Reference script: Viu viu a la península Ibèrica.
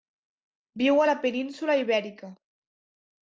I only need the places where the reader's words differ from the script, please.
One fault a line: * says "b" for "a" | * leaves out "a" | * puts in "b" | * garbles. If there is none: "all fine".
* leaves out "viu"